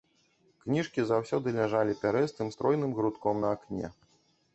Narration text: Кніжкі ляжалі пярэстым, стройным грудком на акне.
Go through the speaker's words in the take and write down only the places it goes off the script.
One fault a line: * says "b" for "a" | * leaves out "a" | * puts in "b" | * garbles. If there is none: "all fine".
* puts in "заўсёды"